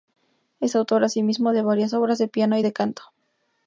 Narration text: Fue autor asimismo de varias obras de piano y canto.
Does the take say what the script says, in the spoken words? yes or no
no